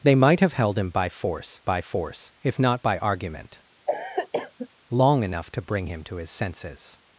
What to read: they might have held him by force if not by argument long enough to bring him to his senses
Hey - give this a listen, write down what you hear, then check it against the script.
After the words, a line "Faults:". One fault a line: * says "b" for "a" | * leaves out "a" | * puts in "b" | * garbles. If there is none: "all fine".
they might have held him by force by force if not by argument long enough to bring him to his senses
Faults:
* puts in "by force"